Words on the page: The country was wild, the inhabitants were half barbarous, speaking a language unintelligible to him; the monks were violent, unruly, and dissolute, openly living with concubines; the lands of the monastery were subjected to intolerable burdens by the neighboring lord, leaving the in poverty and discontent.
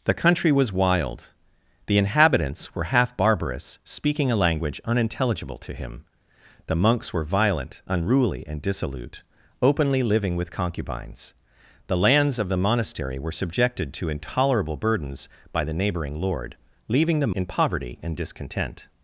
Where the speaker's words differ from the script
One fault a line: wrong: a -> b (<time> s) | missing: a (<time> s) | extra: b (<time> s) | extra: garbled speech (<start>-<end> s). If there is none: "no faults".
no faults